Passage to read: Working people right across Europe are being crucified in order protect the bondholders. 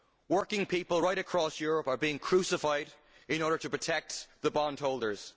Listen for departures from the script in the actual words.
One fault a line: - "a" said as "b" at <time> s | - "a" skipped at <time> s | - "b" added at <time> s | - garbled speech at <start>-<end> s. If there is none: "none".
- "to" added at 3.6 s